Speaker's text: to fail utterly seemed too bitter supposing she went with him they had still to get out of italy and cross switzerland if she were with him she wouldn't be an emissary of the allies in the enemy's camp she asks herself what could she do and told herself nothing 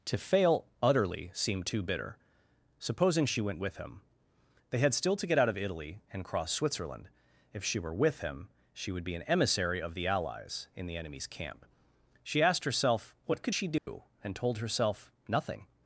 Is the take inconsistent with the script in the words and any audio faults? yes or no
yes